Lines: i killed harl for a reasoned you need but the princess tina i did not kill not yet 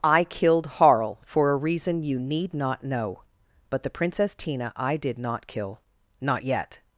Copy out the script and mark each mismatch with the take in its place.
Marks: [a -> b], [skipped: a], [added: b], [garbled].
i killed harl for a [reasoned -> reason] you need [added: not know] but the princess tina i did not kill not yet